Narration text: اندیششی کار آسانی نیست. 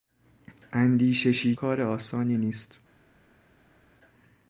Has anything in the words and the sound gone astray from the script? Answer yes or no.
no